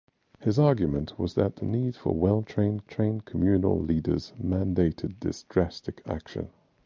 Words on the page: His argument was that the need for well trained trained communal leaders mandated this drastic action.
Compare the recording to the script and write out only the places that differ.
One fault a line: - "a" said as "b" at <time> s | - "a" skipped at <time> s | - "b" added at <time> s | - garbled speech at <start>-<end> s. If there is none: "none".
none